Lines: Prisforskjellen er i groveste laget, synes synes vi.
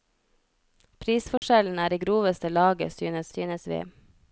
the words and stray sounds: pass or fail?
fail